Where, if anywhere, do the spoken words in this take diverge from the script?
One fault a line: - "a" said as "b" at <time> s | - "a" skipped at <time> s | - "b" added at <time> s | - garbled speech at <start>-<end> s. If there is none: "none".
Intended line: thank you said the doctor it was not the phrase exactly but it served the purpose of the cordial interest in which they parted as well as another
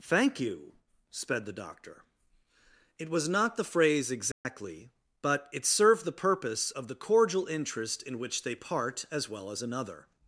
- "said" said as "sped" at 1.1 s
- "parted" said as "part" at 8.5 s